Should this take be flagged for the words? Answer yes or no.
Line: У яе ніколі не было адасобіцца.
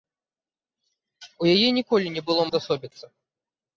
no